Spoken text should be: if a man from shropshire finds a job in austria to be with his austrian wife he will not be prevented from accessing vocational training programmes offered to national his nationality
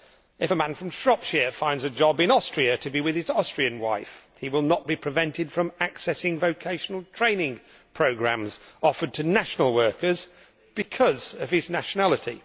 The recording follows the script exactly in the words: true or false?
false